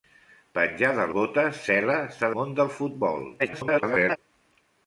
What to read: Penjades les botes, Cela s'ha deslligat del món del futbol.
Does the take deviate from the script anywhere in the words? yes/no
yes